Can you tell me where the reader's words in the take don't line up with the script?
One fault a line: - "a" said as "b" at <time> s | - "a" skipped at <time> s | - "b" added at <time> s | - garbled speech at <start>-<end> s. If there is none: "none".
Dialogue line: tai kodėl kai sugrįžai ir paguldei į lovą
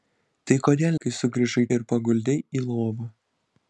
none